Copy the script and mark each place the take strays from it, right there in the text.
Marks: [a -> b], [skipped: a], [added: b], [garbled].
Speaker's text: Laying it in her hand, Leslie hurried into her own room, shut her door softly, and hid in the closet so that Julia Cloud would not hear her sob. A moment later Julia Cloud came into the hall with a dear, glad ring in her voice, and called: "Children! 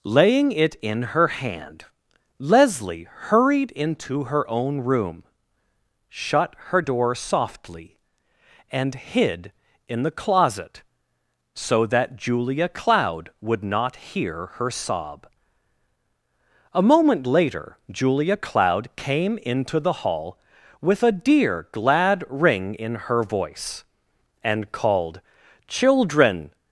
Laying it in her hand, Leslie hurried into her own room, shut her door softly, and hid in the closet so that Julia Cloud would not hear her sob. A moment later Julia Cloud came into the hall with a dear, glad ring in her voice, and called: "Children!